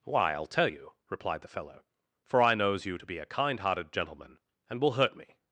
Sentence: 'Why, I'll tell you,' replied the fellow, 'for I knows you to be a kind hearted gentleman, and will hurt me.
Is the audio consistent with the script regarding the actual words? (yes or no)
yes